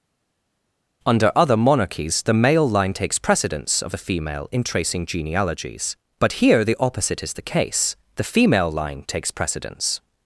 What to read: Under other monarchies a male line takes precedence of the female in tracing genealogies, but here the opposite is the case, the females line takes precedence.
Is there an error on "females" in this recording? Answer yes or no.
yes